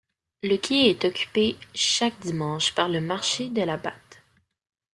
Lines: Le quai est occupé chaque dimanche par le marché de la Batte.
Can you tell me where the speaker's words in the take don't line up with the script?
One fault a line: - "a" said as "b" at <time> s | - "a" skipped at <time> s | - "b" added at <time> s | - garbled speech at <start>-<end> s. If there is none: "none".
none